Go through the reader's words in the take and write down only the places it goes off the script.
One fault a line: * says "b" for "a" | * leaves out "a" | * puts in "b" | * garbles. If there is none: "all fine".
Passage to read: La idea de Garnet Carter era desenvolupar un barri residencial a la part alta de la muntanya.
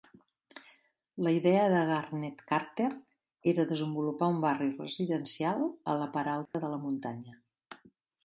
all fine